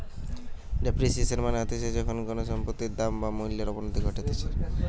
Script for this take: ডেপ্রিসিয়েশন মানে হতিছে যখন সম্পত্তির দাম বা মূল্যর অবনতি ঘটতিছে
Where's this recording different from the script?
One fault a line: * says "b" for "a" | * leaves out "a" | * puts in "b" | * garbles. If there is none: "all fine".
* puts in "কোনো"